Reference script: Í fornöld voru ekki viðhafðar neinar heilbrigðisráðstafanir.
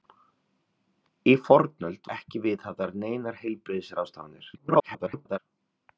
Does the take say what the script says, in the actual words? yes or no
no